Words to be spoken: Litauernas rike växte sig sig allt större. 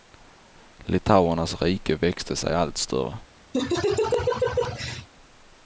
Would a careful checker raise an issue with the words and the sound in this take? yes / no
yes